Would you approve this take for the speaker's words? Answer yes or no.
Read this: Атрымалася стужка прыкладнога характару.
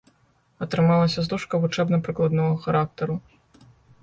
no